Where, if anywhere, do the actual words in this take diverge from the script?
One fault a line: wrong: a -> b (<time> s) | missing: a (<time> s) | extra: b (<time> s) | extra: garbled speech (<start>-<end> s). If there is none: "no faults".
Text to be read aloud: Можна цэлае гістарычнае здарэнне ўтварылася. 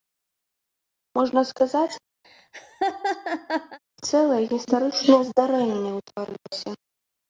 extra: сказаць (1.5 s)